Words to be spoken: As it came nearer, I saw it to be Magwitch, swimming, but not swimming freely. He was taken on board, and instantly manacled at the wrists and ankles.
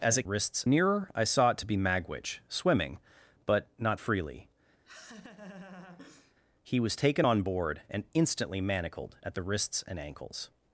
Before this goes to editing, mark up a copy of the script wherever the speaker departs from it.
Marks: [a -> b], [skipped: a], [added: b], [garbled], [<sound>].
As it [came -> wrists] nearer, I saw it to be Magwitch, swimming, but not [skipped: swimming] freely. [laugh] He was taken on board, and instantly manacled at the wrists and ankles.